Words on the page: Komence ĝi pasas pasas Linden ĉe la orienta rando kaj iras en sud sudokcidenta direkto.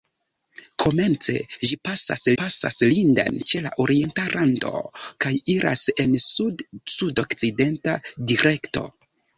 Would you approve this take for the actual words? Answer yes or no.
yes